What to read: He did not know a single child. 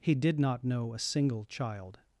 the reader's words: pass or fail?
pass